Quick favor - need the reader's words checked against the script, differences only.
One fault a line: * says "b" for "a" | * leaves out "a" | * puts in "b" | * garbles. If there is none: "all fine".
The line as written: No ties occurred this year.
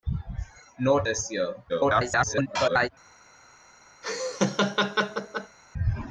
* leaves out "ties occurred"
* garbles